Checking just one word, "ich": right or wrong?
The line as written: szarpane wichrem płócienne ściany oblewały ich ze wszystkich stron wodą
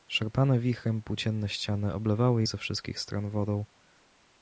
wrong